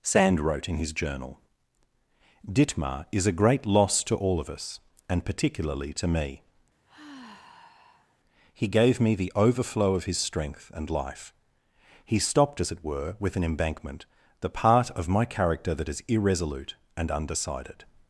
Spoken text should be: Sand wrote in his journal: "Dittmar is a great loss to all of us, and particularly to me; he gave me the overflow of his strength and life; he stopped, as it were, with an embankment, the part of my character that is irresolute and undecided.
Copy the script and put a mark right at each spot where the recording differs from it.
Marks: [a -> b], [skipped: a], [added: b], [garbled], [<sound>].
Sand wrote in his journal: "Dittmar is a great loss to all of us, and particularly to me; [sigh] he gave me the overflow of his strength and life; he stopped, as it were, with an embankment, the part of my character that is irresolute and undecided.